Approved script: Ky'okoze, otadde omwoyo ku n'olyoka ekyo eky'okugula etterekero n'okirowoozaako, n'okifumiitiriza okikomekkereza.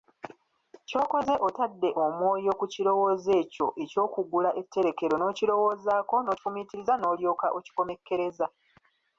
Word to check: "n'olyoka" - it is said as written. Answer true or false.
false